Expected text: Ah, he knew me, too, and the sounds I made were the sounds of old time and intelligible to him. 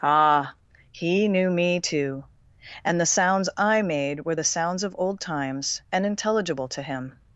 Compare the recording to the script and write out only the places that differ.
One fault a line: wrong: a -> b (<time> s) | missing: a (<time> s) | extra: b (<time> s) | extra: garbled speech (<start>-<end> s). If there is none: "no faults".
wrong: time -> times (5.2 s)